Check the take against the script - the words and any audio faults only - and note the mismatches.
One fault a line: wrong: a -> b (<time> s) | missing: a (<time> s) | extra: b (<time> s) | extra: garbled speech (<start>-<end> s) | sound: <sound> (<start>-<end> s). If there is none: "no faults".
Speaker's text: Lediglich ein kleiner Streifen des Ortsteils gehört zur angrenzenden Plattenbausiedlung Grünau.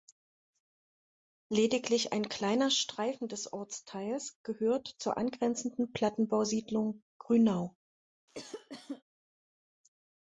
sound: cough (8.3-9.0 s)